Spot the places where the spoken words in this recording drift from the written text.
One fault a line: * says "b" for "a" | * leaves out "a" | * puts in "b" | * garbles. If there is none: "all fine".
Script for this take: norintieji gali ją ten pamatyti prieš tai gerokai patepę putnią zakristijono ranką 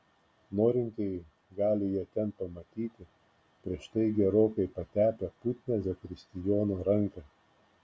all fine